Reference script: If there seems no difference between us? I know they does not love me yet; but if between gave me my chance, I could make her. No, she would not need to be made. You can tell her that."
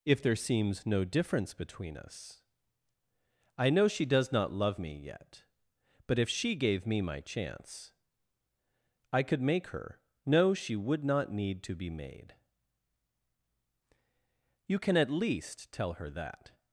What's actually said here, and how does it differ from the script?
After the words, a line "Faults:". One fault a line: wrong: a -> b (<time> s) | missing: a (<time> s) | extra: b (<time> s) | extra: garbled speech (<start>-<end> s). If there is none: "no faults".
If there seems no difference between us? I know she does not love me yet; but if she gave me my chance, I could make her. No, she would not need to be made. You can at least tell her that."
Faults:
wrong: they -> she (3.9 s)
wrong: between -> she (6.3 s)
extra: at least (15.0 s)